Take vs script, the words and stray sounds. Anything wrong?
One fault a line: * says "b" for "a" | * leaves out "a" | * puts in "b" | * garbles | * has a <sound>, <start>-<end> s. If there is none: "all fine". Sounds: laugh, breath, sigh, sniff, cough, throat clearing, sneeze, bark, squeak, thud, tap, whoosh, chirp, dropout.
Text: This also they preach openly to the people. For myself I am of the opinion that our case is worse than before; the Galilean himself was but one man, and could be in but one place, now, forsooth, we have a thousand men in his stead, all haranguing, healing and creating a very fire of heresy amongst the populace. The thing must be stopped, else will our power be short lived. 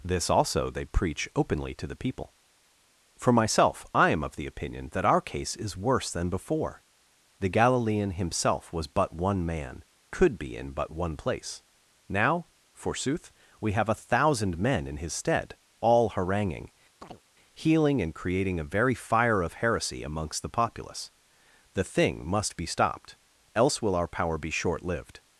* leaves out "and"
* has a chirp, 17.0-17.2 s